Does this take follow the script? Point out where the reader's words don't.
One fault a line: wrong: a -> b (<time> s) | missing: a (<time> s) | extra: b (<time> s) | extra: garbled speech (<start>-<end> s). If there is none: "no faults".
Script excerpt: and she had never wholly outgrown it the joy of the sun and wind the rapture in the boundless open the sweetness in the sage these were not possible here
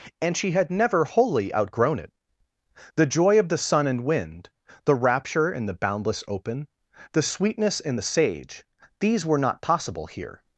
no faults